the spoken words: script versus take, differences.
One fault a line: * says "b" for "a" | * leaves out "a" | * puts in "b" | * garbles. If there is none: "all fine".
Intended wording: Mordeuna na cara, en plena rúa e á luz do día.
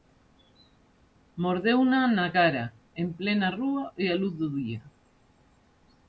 all fine